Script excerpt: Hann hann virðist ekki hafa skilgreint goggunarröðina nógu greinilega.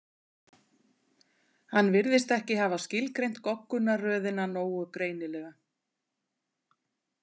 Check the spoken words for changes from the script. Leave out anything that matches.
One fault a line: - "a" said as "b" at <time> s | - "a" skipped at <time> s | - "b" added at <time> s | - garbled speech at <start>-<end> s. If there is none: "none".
- "hann" skipped at 1.9 s